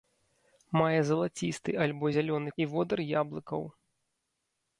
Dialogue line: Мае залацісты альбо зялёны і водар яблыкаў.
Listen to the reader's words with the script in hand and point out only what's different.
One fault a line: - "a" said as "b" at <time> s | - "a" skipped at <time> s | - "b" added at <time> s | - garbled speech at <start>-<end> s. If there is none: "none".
none